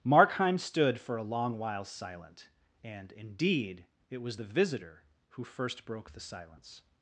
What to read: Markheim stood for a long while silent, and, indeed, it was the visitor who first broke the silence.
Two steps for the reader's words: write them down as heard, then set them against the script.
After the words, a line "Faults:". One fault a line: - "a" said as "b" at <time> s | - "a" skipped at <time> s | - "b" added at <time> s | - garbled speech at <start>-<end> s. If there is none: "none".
Markheim stood for a long while silent, and, indeed, it was the visitor who first broke the silence.
Faults:
none